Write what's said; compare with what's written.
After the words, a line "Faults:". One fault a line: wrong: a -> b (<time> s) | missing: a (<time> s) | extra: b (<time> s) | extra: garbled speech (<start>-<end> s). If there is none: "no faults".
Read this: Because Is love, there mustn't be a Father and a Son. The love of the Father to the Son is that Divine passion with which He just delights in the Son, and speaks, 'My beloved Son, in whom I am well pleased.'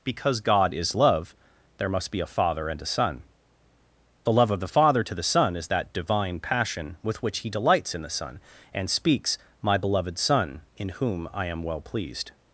Because God is love, there must be a Father and a Son. The love of the Father to the Son is that Divine passion with which He delights in the Son, and speaks, 'My beloved Son, in whom I am well pleased.'
Faults:
extra: God (0.4 s)
wrong: mustn't -> must (1.9 s)
missing: just (7.5 s)